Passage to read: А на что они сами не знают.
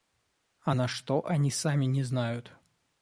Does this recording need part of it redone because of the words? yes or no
no